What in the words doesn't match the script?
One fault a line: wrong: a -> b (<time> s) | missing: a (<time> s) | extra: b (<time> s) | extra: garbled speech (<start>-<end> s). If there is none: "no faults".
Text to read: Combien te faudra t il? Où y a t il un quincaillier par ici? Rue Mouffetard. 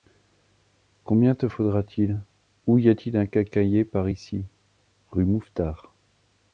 no faults